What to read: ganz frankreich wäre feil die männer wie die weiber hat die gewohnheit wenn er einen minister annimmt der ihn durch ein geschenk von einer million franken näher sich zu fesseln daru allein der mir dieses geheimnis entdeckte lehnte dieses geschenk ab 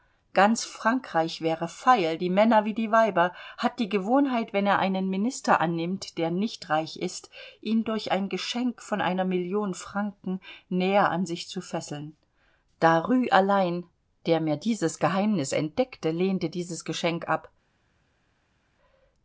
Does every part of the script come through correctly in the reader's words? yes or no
no